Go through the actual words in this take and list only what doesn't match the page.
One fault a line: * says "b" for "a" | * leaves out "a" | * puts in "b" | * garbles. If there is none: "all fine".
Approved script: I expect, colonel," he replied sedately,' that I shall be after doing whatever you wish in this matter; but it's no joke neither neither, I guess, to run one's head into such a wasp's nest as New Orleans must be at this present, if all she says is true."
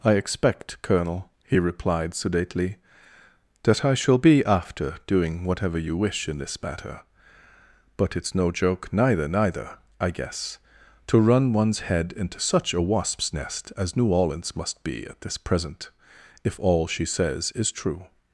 all fine